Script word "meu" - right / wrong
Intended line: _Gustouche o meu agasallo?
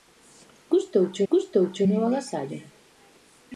right